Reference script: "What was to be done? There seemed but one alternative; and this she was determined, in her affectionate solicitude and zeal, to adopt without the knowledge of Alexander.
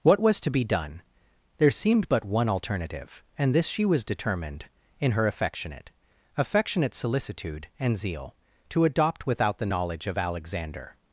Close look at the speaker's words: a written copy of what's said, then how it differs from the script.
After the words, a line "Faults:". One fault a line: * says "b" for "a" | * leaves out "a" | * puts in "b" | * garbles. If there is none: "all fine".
"What was to be done? There seemed but one alternative; and this she was determined, in her affectionate affectionate solicitude and zeal, to adopt without the knowledge of Alexander.
Faults:
* puts in "affectionate"